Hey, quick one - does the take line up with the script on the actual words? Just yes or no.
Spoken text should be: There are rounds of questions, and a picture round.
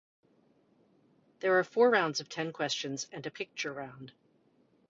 no